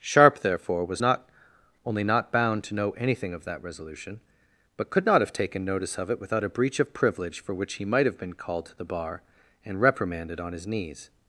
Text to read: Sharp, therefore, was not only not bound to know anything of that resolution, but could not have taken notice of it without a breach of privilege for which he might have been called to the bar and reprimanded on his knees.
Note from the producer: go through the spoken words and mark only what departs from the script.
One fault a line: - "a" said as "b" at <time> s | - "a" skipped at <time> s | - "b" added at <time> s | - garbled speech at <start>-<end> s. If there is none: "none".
none